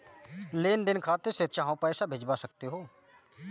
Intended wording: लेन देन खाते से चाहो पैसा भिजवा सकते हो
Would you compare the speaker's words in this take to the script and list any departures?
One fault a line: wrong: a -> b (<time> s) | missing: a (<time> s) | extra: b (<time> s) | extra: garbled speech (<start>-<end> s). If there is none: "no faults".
no faults